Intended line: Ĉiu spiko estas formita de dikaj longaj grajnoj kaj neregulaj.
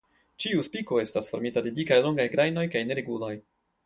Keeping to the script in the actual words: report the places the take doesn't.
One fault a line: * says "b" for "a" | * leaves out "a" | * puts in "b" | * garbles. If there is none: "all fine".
all fine